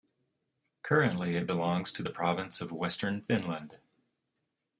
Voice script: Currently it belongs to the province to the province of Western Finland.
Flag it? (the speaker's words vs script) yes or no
yes